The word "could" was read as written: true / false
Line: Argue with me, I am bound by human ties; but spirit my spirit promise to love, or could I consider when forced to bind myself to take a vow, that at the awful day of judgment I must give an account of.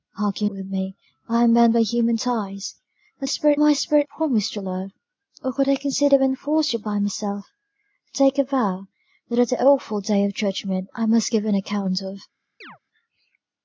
true